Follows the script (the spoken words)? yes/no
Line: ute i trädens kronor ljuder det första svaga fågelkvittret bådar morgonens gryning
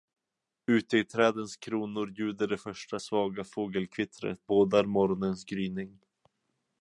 yes